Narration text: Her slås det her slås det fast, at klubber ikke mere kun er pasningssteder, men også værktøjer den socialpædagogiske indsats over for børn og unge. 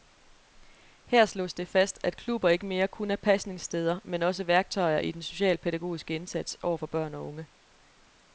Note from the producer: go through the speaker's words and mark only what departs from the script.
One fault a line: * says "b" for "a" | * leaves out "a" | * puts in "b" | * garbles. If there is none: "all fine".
* leaves out "her slås det"
* puts in "i"